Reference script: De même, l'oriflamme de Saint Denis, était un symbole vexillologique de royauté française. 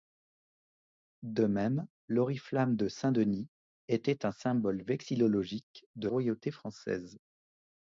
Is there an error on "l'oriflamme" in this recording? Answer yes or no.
no